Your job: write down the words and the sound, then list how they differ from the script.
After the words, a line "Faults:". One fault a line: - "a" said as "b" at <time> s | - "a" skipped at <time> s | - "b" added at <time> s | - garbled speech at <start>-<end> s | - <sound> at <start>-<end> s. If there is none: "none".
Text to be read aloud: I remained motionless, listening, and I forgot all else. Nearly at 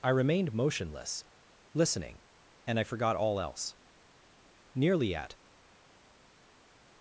I remained motionless, listening, and I forgot all else. Nearly at
Faults:
none